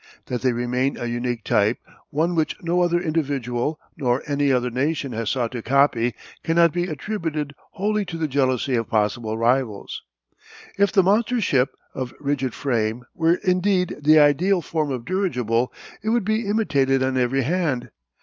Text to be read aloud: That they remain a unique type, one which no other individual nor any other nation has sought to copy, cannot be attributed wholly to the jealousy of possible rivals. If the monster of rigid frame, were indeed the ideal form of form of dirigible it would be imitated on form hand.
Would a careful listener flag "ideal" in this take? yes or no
no